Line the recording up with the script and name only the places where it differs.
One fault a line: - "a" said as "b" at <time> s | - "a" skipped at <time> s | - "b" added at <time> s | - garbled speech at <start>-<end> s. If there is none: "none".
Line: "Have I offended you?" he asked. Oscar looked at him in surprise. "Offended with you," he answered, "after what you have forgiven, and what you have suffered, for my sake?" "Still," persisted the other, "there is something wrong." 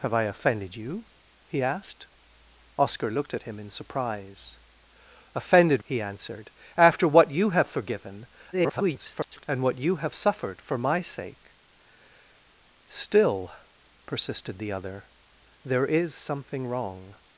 - "with you" skipped at 5.8 s
- garbled speech at 8.5-9.5 s